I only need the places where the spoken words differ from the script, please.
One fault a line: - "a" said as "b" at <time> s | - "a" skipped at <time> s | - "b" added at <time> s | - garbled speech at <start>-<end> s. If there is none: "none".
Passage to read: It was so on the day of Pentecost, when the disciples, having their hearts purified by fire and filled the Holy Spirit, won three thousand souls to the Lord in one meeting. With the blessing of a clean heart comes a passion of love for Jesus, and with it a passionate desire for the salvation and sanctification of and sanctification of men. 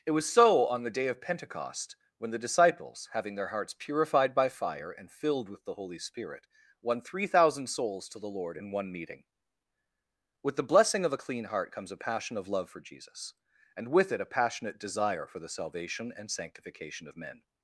- "with" added at 5.5 s
- "and sanctification of" skipped at 17.2 s